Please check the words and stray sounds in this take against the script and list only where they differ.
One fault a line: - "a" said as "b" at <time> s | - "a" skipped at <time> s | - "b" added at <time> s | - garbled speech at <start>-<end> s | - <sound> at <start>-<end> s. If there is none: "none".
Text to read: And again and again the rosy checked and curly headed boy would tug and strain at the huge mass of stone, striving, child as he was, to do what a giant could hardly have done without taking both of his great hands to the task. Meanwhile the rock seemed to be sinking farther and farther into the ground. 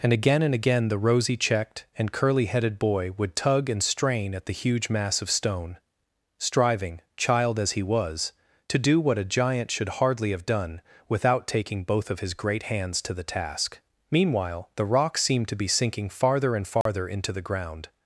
- "could" said as "should" at 9.7 s
- dropout at 16.8-16.9 s